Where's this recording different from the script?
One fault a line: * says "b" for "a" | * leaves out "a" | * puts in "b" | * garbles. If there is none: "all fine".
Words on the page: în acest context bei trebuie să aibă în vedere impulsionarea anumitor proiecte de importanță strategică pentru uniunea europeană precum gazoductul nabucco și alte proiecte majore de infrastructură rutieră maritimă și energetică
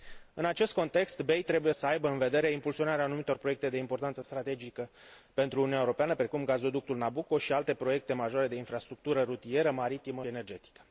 * leaves out "să"
* leaves out "și"